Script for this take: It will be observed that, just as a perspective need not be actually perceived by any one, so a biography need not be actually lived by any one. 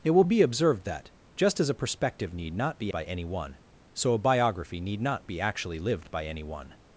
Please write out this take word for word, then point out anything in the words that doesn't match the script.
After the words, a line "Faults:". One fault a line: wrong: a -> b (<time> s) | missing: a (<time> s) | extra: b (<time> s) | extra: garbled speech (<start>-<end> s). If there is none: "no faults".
It will be observed that, just as a perspective need not be by any one, so a biography need not be actually lived by any one.
Faults:
missing: actually perceived (2.9 s)